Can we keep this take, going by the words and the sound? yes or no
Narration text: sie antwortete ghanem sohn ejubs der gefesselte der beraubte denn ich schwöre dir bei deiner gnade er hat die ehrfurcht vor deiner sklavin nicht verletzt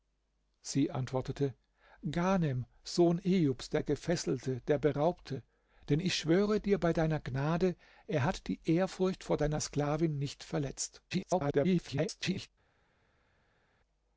no